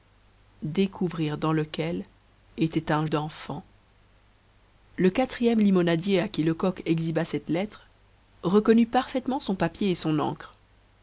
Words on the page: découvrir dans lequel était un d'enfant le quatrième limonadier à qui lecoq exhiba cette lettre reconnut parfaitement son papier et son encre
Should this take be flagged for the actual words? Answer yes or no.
no